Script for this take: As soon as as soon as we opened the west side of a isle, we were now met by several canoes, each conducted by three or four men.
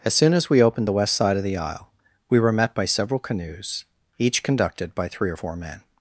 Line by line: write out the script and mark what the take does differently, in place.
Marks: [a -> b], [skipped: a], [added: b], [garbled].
As soon as [skipped: as soon as] we opened the west side of [a -> the] isle, we were [skipped: now] met by several canoes, each conducted by three or four men.